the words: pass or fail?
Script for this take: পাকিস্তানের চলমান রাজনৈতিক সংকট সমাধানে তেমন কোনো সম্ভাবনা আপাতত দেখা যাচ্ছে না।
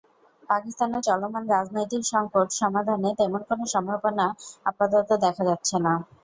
pass